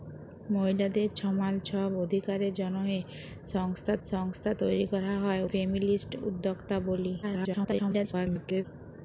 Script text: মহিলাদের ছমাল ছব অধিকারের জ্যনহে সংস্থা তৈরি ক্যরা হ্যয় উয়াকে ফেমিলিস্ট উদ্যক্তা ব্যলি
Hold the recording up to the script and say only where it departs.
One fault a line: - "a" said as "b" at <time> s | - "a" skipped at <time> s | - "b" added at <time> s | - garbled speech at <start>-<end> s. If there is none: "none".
- "সংস্থা" added at 4.1 s
- "উয়াকে" skipped at 5.4 s
- garbled speech at 7.2-8.6 s